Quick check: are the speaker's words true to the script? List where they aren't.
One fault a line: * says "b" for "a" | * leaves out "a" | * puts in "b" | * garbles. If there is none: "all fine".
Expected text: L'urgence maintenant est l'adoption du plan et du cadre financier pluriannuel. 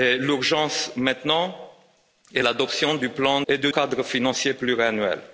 all fine